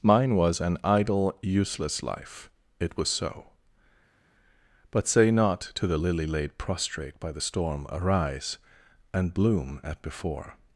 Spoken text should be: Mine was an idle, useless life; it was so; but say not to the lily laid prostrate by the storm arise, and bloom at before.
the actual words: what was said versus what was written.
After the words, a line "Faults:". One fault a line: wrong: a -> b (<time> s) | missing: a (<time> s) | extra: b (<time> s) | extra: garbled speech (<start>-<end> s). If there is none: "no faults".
Mine was an idle, useless life; it was so; but say not to the lily laid prostrate by the storm arise, and bloom at before.
Faults:
no faults